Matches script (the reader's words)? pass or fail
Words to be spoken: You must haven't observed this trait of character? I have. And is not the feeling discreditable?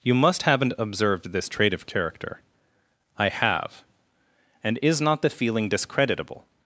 pass